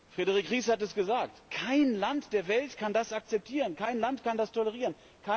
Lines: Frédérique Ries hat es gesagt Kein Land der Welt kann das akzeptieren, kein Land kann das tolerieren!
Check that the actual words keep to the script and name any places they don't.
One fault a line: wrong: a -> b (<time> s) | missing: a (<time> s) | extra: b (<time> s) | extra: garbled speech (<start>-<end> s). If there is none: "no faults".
no faults